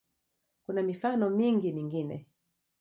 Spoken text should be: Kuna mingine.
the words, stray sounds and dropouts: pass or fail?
fail